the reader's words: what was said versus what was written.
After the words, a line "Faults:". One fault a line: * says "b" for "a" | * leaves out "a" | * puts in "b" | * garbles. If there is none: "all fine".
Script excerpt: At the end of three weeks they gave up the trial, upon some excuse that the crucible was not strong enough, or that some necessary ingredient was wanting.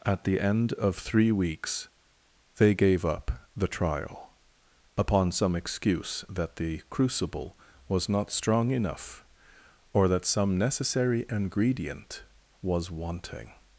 At the end of three weeks they gave up the trial, upon some excuse that the crucible was not strong enough, or that some necessary ingredient was wanting.
Faults:
all fine